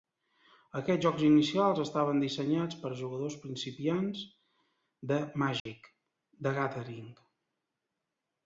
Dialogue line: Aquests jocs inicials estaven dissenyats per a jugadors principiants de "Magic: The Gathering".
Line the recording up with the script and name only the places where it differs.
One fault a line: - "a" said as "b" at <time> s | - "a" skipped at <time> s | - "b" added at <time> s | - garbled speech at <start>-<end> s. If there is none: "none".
none